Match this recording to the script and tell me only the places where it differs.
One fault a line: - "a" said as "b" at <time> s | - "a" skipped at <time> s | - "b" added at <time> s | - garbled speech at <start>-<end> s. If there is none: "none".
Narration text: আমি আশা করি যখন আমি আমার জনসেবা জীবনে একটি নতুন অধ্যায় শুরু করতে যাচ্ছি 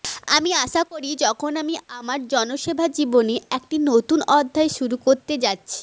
none